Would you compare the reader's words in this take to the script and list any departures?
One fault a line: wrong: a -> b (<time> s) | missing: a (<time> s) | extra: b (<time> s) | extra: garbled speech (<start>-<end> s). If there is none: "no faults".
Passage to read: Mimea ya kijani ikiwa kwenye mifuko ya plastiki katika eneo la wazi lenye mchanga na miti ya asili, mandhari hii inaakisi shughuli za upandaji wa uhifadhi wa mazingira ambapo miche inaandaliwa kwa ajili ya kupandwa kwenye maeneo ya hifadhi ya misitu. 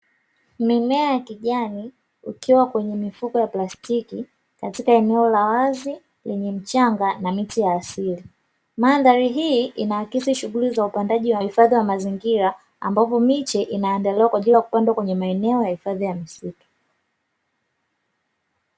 no faults